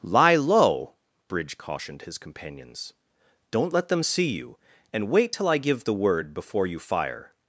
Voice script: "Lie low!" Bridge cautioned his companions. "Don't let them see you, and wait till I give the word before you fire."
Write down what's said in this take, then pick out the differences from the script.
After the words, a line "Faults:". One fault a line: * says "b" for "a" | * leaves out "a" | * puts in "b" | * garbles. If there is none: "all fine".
"Lie low!" Bridge cautioned his companions. "Don't let them see you, and wait till I give the word before you fire."
Faults:
all fine